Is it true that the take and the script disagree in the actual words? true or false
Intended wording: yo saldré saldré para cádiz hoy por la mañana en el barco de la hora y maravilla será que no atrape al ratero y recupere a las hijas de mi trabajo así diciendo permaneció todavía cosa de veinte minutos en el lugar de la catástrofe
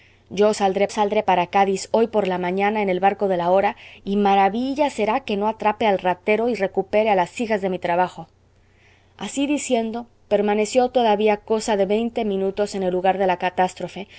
false